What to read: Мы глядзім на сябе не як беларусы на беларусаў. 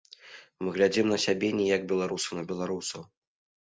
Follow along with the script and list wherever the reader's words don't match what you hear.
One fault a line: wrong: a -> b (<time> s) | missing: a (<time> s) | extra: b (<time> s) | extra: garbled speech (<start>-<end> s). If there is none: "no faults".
no faults